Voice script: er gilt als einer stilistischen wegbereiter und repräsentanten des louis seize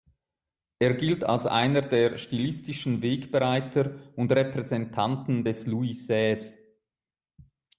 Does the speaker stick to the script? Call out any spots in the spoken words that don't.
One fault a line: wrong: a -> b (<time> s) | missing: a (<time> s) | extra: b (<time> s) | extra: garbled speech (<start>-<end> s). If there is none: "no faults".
extra: der (1.8 s)